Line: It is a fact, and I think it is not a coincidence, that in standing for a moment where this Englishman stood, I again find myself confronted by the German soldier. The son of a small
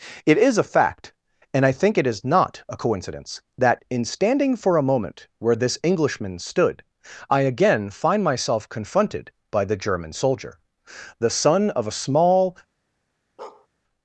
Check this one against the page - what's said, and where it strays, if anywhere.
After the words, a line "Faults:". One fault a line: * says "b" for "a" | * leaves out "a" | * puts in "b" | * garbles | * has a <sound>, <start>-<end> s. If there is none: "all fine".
It is a fact, and I think it is not a coincidence, that in standing for a moment where this Englishman stood, I again find myself confronted by the German soldier. The son of a small
Faults:
* has a bark, 13.4-13.7 s